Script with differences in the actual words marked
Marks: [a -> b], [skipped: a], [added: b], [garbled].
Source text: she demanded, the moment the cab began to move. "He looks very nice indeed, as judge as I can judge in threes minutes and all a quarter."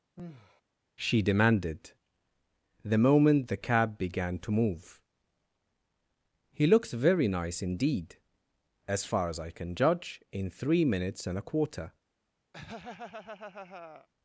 she demanded, the moment the cab began to move. "He looks very nice indeed, as [judge -> far] as I can judge in [threes -> three] minutes and [skipped: all] a quarter."